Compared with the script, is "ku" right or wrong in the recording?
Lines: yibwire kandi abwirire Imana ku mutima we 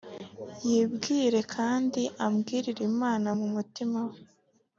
wrong